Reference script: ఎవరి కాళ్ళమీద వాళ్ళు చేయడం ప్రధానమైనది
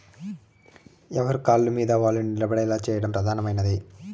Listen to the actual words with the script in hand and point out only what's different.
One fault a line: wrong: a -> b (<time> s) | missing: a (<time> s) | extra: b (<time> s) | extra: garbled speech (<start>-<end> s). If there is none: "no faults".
extra: నిలబడేలా (2.2 s)